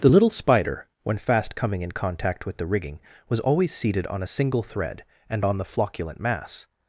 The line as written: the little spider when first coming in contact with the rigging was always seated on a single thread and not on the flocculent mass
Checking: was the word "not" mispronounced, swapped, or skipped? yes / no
yes